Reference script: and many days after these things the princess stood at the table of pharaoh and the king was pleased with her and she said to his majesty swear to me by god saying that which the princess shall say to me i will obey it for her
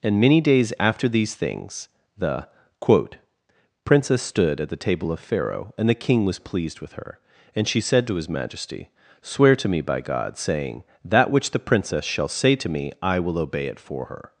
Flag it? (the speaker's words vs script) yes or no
yes